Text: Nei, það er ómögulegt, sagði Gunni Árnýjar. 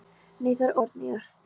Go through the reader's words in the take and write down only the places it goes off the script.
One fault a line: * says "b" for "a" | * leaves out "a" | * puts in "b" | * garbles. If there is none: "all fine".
* leaves out "ómögulegt sagði Gunni"